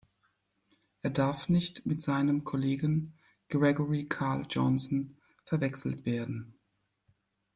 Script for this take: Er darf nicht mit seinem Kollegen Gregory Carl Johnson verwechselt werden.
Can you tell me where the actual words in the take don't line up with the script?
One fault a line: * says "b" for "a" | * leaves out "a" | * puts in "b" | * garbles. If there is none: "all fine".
all fine